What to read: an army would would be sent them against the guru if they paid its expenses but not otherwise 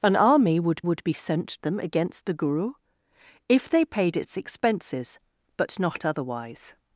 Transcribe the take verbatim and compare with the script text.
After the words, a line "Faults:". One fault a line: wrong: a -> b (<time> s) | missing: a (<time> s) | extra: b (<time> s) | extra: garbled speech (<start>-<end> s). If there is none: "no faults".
an army would would be sent them against the guru if they paid its expenses but not otherwise
Faults:
no faults